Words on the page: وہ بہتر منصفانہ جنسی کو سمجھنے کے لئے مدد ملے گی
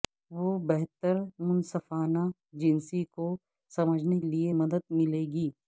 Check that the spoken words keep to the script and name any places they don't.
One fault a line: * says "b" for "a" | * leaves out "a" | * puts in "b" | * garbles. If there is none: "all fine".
* leaves out "کے"